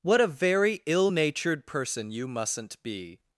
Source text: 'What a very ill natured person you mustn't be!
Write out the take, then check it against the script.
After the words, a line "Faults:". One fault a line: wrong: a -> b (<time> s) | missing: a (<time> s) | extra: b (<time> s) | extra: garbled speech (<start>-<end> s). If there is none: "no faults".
'What a very ill natured person you mustn't be!
Faults:
no faults